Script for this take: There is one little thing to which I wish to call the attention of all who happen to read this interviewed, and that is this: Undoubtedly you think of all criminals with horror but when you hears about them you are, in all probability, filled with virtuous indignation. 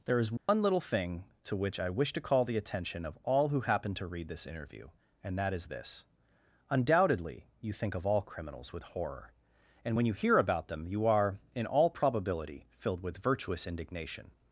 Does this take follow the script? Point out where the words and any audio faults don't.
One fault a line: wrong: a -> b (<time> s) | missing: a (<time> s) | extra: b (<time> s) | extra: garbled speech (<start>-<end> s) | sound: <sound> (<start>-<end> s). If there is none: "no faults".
sound: dropout (0.4-0.5 s)
wrong: interviewed -> interview (4.5 s)
wrong: but -> and (9.8 s)
wrong: hears -> hear (10.1 s)